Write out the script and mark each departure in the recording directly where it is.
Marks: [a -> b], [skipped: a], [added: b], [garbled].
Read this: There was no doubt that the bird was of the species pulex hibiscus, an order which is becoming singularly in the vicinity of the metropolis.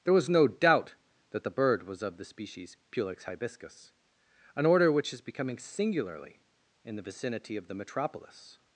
There was no doubt that the bird was of the species pulex hibiscus, an order which is becoming singularly in the vicinity of the metropolis.